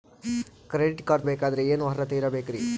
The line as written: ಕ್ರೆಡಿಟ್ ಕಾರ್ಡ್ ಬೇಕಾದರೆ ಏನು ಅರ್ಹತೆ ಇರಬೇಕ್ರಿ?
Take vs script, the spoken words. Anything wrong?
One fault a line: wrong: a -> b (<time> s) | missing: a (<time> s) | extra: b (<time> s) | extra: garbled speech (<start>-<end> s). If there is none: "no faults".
no faults